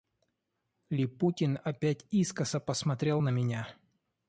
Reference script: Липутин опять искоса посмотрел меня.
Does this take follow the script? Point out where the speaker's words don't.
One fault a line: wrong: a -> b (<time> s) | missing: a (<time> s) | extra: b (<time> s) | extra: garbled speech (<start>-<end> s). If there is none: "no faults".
extra: на (3.2 s)